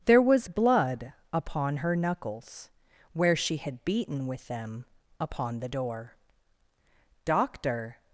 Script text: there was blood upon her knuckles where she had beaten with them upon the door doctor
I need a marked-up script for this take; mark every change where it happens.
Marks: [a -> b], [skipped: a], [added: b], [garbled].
there was blood upon her knuckles where she had beaten with them upon the door doctor